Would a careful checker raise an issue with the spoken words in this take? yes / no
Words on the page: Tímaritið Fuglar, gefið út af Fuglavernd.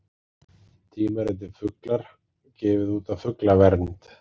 no